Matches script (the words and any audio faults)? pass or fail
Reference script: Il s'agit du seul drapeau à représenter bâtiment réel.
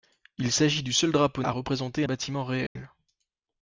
fail